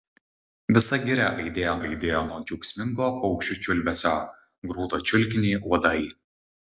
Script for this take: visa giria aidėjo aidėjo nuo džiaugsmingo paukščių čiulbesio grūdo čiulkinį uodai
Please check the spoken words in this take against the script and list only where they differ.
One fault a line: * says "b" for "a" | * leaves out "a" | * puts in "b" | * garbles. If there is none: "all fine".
all fine